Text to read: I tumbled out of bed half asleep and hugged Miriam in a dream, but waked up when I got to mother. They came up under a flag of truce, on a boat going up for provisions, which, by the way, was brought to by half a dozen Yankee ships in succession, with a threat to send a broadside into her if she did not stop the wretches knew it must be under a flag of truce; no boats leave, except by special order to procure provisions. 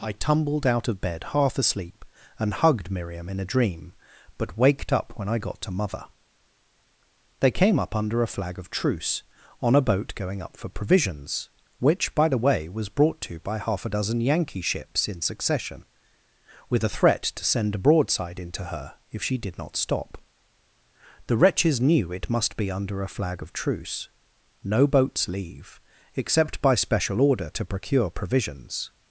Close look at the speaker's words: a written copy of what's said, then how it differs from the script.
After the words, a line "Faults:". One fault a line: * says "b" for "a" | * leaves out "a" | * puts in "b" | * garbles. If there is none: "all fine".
I tumbled out of bed half asleep and hugged Miriam in a dream, but waked up when I got to mother. They came up under a flag of truce, on a boat going up for provisions, which, by the way, was brought to by half a dozen Yankee ships in succession, with a threat to send a broadside into her if she did not stop the wretches knew it must be under a flag of truce; no boats leave, except by special order to procure provisions.
Faults:
all fine